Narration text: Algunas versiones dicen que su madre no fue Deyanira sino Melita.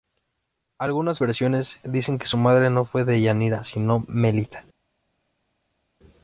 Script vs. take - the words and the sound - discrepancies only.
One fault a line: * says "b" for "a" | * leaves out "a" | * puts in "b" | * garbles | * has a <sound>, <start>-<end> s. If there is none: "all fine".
all fine